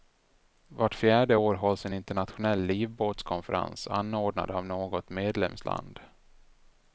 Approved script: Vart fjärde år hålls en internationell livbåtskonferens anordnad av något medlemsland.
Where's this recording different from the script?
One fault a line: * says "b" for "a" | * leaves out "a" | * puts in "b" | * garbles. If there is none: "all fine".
all fine